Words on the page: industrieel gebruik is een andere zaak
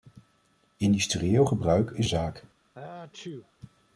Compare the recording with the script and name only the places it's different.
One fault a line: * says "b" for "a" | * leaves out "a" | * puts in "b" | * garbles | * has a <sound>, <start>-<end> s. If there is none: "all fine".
* leaves out "een andere"
* has a sneeze, 2.7-3.5 s